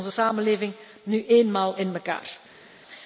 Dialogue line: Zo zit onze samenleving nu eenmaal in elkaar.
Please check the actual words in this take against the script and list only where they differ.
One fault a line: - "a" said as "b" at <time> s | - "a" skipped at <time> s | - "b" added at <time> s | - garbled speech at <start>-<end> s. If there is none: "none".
none